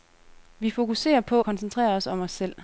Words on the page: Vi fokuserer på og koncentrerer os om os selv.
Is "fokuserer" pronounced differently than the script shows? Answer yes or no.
no